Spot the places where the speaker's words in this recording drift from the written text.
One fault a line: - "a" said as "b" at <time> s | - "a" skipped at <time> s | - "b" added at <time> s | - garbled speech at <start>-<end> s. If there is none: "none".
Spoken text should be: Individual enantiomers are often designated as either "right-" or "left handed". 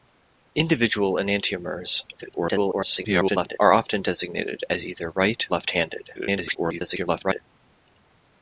- garbled speech at 2.2-3.6 s
- "or" skipped at 5.5 s
- garbled speech at 6.2-7.4 s